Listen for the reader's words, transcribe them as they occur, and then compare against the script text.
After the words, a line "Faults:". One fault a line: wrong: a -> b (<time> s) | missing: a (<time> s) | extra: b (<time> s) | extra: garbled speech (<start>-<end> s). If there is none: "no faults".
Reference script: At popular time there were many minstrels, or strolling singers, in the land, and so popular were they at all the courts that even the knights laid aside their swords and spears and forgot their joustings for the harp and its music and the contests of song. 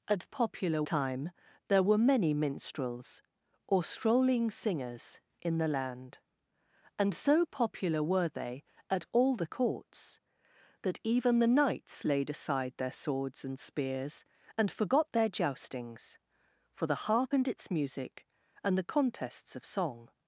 At popular time there were many minstrels, or strolling singers, in the land, and so popular were they at all the courts that even the knights laid aside their swords and spears and forgot their joustings for the harp and its music and the contests of song.
Faults:
no faults